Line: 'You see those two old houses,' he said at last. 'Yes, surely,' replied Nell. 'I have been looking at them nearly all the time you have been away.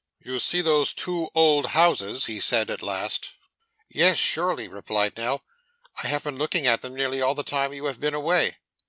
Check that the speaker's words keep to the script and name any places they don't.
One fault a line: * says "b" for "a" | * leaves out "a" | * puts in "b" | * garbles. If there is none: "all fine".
all fine